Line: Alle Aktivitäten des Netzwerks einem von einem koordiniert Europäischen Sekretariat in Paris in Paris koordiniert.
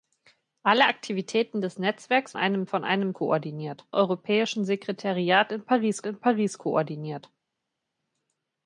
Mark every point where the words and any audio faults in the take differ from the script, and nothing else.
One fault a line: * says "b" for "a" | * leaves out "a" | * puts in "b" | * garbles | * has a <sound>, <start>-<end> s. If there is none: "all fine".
all fine